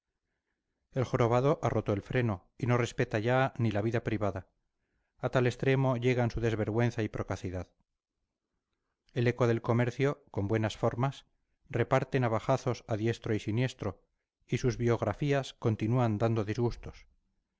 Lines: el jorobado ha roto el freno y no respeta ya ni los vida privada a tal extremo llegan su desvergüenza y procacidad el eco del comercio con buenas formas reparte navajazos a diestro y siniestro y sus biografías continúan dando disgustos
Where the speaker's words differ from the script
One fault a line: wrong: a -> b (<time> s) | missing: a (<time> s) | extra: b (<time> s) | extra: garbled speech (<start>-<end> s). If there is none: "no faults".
wrong: los -> la (3.7 s)